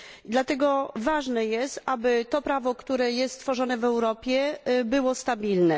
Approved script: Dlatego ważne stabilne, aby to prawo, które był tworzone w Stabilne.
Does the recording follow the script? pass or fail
fail